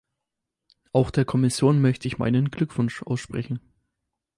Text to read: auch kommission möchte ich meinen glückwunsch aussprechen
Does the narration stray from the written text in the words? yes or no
yes